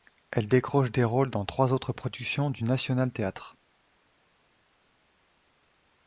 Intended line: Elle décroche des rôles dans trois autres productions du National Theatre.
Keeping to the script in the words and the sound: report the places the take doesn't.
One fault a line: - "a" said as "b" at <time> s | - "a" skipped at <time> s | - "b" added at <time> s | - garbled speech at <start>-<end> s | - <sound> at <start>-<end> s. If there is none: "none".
none